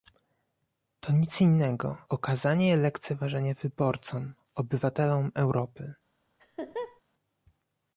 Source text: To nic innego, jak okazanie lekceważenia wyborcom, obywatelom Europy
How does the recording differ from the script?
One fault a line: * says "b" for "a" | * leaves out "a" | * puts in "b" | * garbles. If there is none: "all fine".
* leaves out "jak"